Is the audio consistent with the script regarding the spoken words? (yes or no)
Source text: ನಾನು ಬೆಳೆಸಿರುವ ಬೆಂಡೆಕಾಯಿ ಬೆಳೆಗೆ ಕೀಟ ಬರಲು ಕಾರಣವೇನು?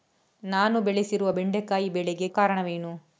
no